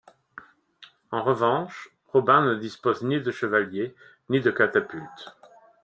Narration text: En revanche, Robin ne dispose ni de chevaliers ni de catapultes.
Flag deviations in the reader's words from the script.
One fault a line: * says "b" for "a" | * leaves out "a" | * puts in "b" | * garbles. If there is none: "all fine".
all fine